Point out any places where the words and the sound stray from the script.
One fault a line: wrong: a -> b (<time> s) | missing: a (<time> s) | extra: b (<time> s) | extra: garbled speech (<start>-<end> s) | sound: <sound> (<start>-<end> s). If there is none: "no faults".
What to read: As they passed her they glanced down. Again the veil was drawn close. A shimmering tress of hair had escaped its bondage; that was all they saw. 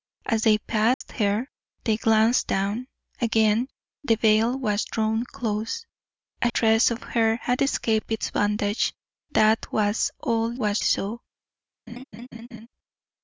sound: dropout (0.9-1.0 s)
missing: shimmering (6.5 s)
wrong: they -> was (10.5 s)
sound: laugh (11.9-12.7 s)